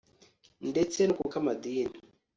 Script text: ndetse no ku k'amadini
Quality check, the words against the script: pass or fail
pass